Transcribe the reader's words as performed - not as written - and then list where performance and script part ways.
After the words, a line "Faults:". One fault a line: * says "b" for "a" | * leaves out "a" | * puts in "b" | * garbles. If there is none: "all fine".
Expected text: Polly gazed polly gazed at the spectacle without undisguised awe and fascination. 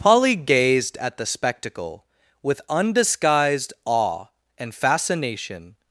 Polly gazed at the spectacle with undisguised awe and fascination.
Faults:
* leaves out "polly gazed"
* says "with" for "without"